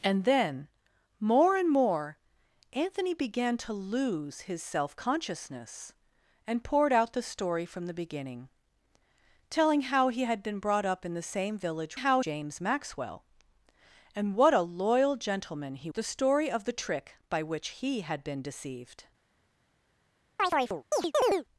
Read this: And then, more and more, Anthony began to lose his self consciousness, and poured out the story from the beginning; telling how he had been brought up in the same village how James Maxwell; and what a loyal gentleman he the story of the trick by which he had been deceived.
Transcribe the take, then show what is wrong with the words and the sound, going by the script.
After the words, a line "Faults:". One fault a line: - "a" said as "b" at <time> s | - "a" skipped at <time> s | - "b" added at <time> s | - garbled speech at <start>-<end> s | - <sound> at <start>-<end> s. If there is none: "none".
And then, more and more, Anthony began to lose his self consciousness, and poured out the story from the beginning; telling how he had been brought up in the same village how James Maxwell; and what a loyal gentleman he the story of the trick by which he had been deceived.
Faults:
- chirp at 20.4-21.4 s